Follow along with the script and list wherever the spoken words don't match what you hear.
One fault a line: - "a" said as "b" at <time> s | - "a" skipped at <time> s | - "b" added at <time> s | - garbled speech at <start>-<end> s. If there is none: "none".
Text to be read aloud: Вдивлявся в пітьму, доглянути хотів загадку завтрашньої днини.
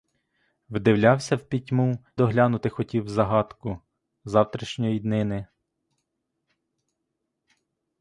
none